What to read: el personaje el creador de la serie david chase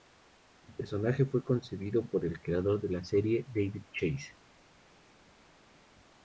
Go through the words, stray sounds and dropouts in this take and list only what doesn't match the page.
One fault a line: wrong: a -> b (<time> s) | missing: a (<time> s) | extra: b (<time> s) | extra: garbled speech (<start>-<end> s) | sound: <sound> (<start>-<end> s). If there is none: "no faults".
extra: fue concebido por (1.2 s)